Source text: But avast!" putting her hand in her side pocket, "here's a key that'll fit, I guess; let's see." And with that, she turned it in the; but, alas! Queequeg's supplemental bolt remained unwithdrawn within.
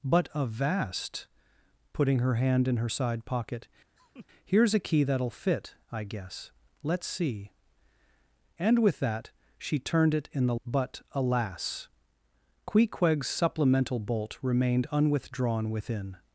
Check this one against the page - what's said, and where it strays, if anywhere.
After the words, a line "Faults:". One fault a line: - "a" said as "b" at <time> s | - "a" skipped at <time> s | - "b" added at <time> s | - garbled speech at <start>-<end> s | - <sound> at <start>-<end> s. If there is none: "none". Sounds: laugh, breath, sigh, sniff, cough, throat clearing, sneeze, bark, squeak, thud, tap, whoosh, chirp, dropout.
But avast!" putting her hand in her side pocket, "here's a key that'll fit, I guess; let's see." And with that, she turned it in the; but, alas! Queequeg's supplemental bolt remained unwithdrawn within.
Faults:
- laugh at 4.0-4.3 s